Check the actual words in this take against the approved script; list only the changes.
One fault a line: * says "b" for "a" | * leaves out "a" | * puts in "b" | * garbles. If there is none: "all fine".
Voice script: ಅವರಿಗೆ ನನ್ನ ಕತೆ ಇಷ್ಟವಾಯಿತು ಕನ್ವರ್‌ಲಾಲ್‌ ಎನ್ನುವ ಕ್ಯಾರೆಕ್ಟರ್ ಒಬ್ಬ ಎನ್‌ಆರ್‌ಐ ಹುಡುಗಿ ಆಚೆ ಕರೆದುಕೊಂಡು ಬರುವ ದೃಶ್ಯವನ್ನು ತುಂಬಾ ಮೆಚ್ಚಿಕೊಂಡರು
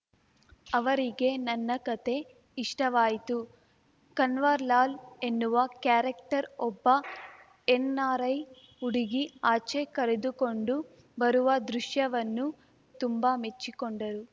all fine